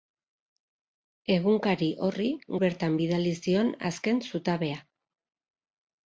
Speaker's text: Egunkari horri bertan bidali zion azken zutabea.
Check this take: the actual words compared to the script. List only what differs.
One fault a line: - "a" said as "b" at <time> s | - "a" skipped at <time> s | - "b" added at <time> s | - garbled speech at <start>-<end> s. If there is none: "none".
none